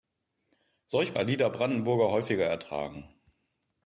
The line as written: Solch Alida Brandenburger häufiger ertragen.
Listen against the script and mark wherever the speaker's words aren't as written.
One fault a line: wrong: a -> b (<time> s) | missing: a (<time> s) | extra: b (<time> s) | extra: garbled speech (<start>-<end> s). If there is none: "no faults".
no faults